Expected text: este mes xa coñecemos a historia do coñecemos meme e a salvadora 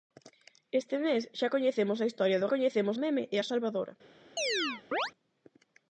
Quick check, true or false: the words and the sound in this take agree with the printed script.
false